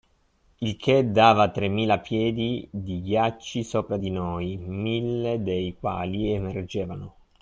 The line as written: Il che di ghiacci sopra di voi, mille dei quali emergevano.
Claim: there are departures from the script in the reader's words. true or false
true